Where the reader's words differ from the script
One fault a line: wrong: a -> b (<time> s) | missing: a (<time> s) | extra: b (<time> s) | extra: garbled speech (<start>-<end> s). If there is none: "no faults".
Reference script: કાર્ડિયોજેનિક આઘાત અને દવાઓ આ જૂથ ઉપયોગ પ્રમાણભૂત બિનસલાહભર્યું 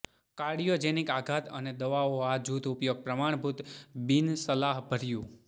no faults